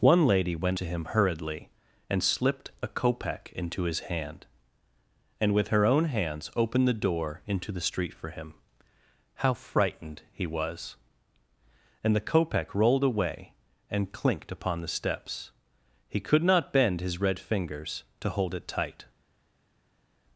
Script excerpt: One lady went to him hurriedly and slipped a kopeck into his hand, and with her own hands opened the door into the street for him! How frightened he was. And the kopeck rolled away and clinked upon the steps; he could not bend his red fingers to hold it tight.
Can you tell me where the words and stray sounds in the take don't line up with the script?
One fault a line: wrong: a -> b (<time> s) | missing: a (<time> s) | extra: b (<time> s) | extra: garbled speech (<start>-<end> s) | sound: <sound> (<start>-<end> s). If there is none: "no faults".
no faults